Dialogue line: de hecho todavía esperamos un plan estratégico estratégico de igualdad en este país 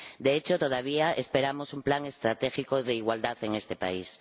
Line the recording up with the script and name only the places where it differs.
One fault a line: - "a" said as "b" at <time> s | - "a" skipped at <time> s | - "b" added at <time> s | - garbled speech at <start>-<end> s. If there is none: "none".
- "estratégico" skipped at 2.8 s